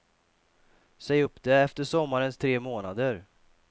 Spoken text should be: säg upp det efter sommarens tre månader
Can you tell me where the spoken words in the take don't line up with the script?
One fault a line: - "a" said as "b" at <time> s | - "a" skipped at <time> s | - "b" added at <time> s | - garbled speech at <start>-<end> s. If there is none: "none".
none